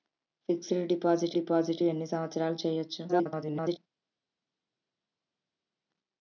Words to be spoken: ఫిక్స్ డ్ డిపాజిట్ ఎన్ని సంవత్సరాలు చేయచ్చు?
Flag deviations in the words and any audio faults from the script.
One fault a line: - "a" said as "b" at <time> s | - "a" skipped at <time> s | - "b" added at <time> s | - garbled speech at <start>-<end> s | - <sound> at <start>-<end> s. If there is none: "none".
- "డిపాజిట్" added at 1.3 s
- garbled speech at 3.1-3.8 s